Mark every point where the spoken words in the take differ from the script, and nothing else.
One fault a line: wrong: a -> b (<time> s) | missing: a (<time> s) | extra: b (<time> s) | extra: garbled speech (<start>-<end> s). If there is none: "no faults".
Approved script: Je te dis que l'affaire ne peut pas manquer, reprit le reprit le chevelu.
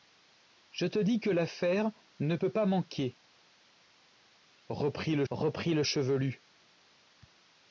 no faults